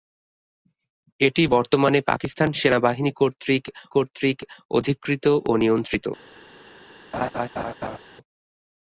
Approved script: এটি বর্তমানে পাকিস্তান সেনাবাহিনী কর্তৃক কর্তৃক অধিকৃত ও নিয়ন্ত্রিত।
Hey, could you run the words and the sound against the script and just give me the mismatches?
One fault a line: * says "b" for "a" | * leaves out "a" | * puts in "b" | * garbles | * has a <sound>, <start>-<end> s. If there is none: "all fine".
* has a laugh, 7.1-8.0 s